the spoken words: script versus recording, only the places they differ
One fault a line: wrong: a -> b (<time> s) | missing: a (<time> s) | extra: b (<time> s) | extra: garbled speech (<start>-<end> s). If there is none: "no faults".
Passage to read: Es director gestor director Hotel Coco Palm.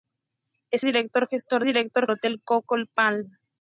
no faults